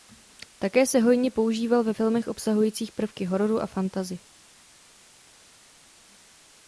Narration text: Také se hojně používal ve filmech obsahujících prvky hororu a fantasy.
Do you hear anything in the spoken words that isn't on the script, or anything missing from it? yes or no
no